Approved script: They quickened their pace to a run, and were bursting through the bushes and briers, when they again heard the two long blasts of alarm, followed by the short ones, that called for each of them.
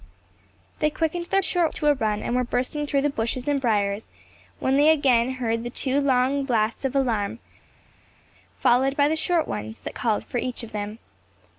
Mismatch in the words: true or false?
true